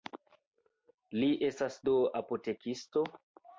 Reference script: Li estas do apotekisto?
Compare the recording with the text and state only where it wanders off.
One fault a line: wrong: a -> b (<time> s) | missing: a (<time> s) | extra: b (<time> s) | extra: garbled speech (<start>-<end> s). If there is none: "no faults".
no faults